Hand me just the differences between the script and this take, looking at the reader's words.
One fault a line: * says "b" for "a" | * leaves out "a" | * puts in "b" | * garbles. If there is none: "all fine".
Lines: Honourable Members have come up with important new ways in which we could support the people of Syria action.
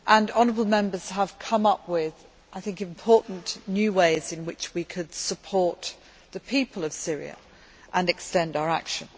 * puts in "and extend our"